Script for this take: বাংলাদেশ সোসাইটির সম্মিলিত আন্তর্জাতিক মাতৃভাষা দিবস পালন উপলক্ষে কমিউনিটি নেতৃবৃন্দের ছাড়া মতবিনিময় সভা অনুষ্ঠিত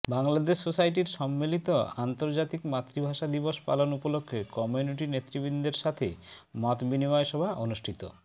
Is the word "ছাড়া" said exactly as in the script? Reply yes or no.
no